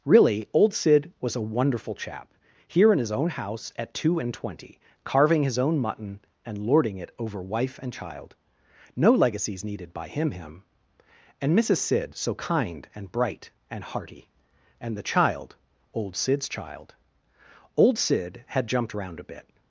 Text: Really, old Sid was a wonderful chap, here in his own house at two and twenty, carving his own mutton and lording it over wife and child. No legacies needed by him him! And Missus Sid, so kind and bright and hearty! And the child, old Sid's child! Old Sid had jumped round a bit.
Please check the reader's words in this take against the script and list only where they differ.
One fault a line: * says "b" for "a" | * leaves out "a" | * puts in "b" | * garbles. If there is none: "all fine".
all fine